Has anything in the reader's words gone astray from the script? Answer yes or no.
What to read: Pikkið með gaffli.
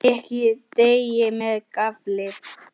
yes